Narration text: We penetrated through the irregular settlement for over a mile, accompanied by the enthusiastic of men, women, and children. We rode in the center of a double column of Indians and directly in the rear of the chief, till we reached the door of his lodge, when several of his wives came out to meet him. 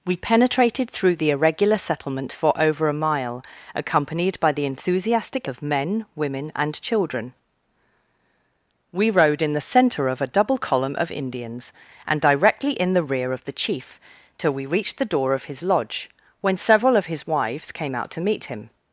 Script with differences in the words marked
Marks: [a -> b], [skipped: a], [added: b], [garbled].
We penetrated through the irregular settlement for over a mile, accompanied by the enthusiastic of men, women, and children. We rode in the center of a double column of Indians and directly in the rear of the chief, till we reached the door of his lodge, when several of his wives came out to meet him.